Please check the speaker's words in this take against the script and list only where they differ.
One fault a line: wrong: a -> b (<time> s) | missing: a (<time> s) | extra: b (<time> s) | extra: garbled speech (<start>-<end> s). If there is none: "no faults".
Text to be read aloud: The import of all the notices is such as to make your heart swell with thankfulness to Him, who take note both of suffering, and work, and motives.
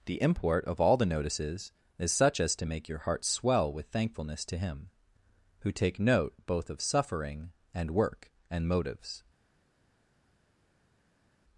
no faults